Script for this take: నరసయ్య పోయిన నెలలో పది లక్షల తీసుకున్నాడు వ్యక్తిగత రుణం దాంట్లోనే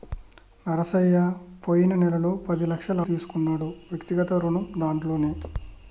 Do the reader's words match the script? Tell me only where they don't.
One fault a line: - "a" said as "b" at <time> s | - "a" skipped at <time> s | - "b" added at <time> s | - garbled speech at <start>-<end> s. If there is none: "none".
none